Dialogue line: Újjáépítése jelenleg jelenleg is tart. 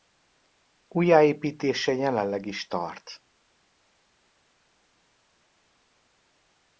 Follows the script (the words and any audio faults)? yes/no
no